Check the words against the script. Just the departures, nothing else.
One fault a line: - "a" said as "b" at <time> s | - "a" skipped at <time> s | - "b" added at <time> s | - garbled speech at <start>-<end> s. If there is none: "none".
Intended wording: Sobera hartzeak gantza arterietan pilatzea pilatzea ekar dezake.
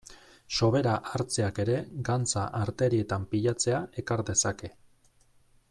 - "ere" added at 1.6 s
- "pilatzea" skipped at 3.8 s